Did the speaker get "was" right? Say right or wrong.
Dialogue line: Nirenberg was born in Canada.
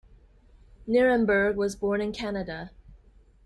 right